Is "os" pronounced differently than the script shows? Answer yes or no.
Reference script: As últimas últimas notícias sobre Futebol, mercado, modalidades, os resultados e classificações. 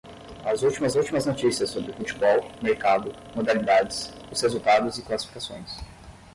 no